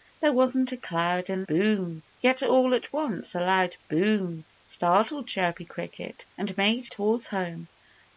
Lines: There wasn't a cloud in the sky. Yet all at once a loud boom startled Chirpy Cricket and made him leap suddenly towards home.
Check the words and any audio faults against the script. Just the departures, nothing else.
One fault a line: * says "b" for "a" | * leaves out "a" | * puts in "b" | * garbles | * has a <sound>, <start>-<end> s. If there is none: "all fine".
* says "boom" for "sky"
* leaves out "him leap suddenly"